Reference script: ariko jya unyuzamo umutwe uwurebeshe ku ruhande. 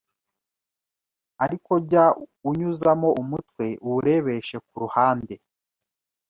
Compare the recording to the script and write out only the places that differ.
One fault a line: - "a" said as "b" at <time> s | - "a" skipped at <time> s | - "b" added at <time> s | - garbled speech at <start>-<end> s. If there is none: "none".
none